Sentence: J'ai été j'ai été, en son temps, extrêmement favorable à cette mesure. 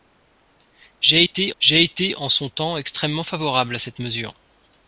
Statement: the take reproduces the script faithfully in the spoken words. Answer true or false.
true